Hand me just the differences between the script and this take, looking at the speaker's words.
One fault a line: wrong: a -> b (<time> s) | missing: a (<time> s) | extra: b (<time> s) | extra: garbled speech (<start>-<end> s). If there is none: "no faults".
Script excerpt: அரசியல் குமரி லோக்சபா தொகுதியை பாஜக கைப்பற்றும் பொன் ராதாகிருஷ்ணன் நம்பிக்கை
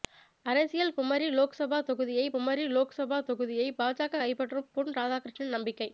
extra: குமரி லோக்சபா தொகுதியை (2.3 s)